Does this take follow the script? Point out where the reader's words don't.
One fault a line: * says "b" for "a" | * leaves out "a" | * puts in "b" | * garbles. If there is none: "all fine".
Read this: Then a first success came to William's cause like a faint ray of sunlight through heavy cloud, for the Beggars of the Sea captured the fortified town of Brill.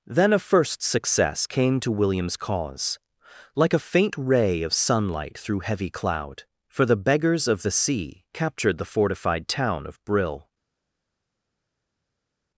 all fine